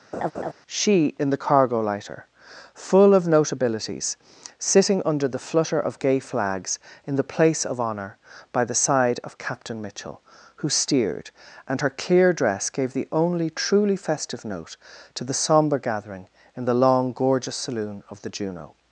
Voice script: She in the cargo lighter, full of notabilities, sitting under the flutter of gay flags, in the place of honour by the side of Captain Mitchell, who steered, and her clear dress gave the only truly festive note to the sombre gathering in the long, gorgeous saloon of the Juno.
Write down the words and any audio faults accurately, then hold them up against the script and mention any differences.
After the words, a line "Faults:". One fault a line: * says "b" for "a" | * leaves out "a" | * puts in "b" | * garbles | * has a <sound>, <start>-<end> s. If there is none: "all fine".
She in the cargo lighter, full of notabilities, sitting under the flutter of gay flags, in the place of honour by the side of Captain Mitchell, who steered, and her clear dress gave the only truly festive note to the sombre gathering in the long, gorgeous saloon of the Juno.
Faults:
* has a laugh, 0.1-0.5 s